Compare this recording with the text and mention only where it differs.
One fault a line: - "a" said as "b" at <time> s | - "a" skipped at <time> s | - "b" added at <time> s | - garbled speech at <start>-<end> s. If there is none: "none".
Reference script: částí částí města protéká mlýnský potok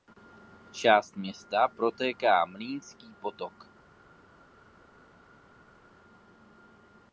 - "částí" skipped at 1.2 s